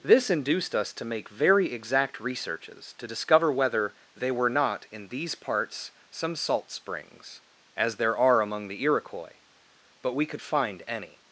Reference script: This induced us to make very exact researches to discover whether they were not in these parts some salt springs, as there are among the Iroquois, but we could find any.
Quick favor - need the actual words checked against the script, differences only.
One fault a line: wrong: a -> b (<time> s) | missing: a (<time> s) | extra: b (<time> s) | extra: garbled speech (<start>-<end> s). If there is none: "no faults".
no faults